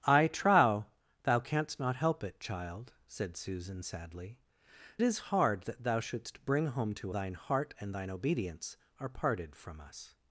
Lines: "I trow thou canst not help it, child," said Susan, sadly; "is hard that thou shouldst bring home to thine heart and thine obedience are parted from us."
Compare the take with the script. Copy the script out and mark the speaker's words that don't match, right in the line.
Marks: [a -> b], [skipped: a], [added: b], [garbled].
"I trow thou canst not help it, child," said Susan, sadly; "is hard that thou shouldst bring home to thine heart and thine obedience are parted from us."